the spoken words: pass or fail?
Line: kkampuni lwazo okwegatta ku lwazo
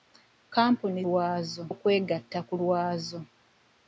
pass